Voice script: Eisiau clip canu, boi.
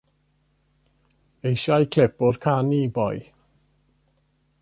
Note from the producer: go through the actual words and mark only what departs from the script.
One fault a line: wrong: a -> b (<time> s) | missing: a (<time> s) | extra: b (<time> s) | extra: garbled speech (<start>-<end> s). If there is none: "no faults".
extra: o'r (2.3 s)